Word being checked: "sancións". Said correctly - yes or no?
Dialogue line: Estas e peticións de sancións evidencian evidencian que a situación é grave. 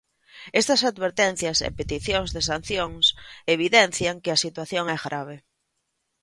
yes